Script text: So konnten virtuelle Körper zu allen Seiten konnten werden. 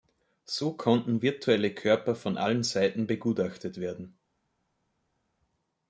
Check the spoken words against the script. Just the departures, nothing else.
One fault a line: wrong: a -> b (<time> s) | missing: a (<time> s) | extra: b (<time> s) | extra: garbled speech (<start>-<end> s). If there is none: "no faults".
wrong: zu -> von (2.1 s)
wrong: konnten -> begutachtet (3.0 s)